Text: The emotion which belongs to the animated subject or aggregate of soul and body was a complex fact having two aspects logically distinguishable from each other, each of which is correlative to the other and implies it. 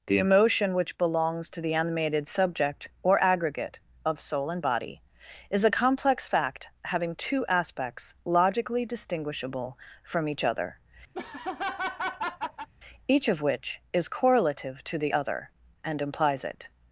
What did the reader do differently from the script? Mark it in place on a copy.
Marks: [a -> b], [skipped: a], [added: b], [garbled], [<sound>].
The emotion which belongs to the animated subject or aggregate of soul and body [was -> is] a complex fact having two aspects logically distinguishable from each other, [laugh] each of which is correlative to the other and implies it.